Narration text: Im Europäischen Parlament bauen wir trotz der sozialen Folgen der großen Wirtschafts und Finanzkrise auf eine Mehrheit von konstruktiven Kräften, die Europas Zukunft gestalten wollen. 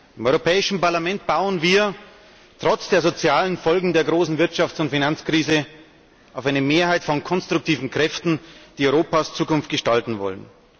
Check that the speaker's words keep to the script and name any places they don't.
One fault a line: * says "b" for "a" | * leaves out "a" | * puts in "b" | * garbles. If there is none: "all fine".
all fine